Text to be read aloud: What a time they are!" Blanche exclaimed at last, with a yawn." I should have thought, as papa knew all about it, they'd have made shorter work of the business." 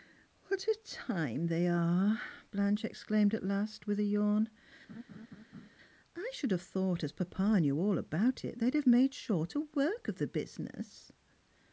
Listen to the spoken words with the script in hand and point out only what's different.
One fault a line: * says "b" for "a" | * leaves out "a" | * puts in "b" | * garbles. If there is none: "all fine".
all fine